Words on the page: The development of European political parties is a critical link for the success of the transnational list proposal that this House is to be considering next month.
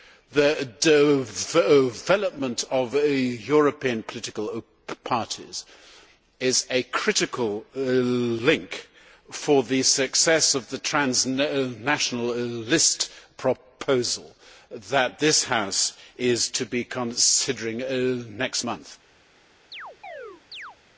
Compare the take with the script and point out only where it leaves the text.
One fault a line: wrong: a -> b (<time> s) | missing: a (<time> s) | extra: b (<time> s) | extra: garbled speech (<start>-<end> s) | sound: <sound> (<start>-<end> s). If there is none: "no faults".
sound: chirp (19.7-20.8 s)